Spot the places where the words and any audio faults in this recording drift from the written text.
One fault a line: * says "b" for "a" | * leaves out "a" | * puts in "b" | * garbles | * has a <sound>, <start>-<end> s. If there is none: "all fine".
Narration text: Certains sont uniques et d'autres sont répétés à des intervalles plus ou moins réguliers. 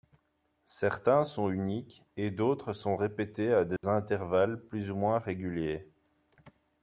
* has a dropout, 3.8-3.8 s